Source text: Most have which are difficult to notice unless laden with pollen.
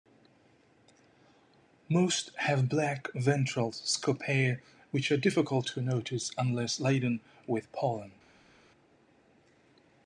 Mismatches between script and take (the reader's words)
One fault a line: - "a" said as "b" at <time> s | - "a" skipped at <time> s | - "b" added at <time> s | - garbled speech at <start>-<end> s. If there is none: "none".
- "black ventral scopae" added at 2.7 s